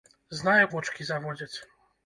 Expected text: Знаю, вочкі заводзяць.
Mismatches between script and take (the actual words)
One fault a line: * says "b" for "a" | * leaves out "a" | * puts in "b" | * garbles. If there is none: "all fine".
all fine